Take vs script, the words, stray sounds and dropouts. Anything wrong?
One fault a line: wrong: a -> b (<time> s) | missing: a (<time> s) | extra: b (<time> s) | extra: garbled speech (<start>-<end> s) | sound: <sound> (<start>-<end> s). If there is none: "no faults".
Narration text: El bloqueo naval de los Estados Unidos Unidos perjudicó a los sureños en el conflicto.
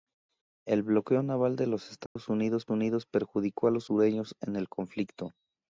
sound: dropout (2.1-2.2 s)